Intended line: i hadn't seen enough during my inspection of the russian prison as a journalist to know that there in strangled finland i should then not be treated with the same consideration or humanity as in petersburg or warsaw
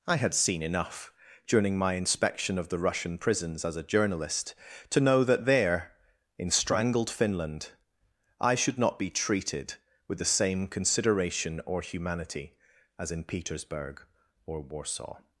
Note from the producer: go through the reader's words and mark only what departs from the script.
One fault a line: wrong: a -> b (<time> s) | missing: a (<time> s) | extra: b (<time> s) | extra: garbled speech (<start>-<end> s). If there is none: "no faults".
wrong: hadn't -> had (0.1 s)
wrong: prison -> prisons (3.2 s)
missing: then (8.8 s)